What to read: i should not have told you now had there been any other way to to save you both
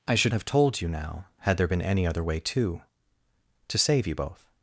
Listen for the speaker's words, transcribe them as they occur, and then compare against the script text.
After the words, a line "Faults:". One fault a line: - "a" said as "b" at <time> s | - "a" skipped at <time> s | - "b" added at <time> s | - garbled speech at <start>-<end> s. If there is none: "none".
i should have told you now had there been any other way to to save you both
Faults:
- "not" skipped at 0.3 s